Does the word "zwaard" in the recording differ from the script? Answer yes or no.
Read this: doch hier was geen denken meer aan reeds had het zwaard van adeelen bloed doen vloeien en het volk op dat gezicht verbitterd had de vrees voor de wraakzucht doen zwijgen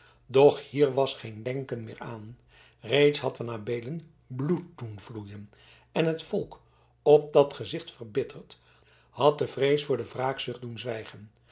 yes